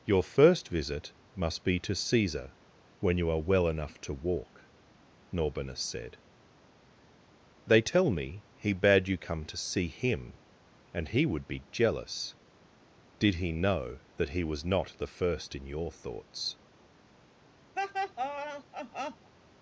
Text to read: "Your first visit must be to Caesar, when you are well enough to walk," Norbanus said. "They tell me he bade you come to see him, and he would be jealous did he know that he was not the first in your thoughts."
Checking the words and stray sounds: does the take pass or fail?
fail